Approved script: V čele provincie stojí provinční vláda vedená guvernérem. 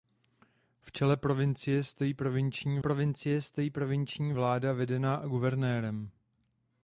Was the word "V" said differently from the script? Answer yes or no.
no